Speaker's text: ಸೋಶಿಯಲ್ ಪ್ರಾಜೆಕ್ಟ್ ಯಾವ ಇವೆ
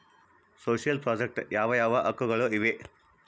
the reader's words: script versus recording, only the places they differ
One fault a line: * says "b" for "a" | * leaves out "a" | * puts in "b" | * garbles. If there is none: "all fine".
* puts in "ಯಾವ ಹಕ್ಕುಗಳು"